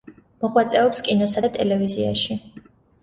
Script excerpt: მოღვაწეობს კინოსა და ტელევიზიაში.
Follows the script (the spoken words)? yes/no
yes